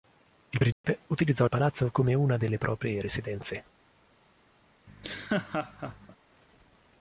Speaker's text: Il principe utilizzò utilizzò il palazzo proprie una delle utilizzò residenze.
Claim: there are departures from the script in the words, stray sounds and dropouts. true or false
true